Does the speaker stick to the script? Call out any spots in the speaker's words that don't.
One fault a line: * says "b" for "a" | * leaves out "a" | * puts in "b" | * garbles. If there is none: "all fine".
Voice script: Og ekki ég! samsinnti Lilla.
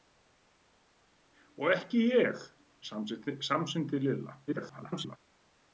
* garbles